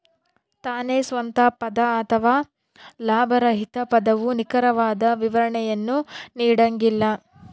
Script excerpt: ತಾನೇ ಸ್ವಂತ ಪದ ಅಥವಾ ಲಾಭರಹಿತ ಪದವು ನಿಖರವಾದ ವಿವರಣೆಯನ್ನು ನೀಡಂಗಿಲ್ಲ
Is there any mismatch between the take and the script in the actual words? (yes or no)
no